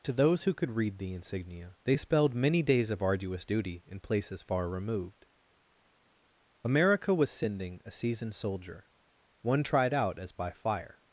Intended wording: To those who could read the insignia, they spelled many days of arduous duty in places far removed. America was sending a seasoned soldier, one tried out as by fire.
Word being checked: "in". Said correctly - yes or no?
yes